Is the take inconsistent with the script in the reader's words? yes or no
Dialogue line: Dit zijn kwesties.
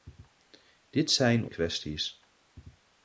no